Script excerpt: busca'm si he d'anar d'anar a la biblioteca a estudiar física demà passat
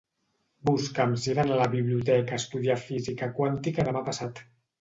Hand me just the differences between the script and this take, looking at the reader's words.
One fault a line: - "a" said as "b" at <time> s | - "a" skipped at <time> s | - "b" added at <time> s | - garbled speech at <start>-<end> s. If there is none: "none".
- "d'anar" skipped at 1.6 s
- "quàntica" added at 3.4 s